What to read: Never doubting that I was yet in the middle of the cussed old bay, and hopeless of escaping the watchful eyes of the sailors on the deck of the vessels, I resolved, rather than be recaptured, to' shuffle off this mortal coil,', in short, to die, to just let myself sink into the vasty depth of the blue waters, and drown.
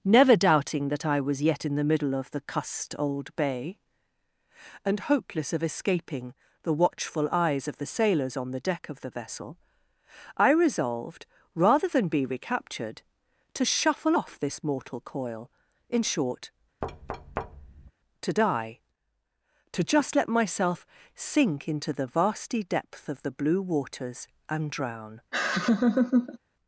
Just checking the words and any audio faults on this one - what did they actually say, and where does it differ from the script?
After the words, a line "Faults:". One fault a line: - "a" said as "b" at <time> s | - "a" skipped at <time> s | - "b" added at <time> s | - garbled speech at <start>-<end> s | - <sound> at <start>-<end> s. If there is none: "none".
Never doubting that I was yet in the middle of the cussed old bay, and hopeless of escaping the watchful eyes of the sailors on the deck of the vessel, I resolved, rather than be recaptured, to' shuffle off this mortal coil,', in short, to die, to just let myself sink into the vasty depth of the blue waters, and drown.
Faults:
- "vessels" said as "vessel" at 9.1 s
- thud at 16.8-17.9 s
- laugh at 25.3-26.4 s